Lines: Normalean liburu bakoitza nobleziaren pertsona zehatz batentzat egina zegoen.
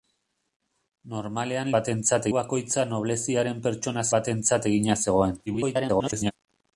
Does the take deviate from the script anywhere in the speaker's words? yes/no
yes